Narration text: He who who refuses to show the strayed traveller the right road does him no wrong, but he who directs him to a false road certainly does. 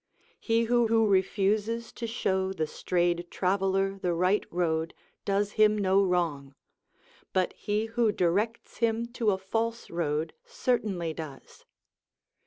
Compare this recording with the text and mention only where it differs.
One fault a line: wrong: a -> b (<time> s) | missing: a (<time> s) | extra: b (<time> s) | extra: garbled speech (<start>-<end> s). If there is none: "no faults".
no faults